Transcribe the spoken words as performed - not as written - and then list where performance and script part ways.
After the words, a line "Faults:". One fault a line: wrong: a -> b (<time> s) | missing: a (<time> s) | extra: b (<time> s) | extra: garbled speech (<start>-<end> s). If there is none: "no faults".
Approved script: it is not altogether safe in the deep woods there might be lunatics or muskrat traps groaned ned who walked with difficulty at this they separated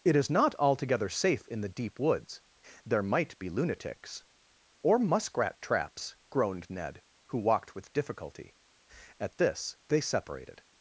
it is not altogether safe in the deep woods there might be lunatics or muskrat traps groaned ned who walked with difficulty at this they separated
Faults:
no faults